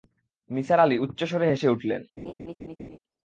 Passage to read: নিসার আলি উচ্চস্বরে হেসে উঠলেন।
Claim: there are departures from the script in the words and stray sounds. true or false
true